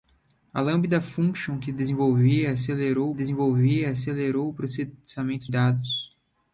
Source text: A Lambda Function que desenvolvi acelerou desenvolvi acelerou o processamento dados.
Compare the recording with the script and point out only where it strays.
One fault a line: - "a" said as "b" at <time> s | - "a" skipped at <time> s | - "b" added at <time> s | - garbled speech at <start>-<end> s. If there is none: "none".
none